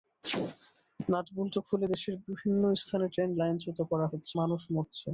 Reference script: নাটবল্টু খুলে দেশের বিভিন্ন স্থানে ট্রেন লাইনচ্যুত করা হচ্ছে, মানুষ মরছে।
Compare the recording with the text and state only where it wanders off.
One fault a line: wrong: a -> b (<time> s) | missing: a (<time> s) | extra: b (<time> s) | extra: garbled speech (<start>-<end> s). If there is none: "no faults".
no faults